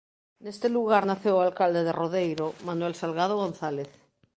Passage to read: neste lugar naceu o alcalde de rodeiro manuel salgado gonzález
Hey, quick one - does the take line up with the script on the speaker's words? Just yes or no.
yes